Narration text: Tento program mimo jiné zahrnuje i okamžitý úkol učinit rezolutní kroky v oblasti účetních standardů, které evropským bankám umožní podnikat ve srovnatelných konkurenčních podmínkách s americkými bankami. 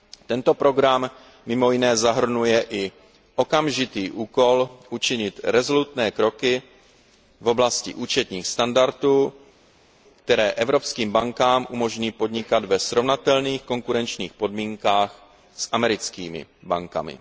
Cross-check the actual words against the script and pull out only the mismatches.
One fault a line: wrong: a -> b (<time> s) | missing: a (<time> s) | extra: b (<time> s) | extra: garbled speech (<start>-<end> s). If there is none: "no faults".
no faults